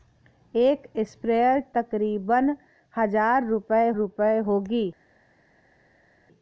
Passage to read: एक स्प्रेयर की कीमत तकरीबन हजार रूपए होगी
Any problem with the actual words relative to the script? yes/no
yes